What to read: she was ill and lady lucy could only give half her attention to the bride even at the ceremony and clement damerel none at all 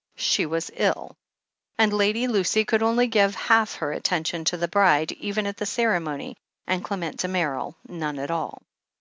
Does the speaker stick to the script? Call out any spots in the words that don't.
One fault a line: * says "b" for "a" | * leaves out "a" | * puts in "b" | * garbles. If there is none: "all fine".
all fine